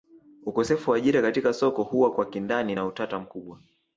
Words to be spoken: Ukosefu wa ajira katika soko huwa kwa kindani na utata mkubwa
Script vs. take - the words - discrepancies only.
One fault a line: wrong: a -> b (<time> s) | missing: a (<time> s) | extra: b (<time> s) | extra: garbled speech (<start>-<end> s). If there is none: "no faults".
no faults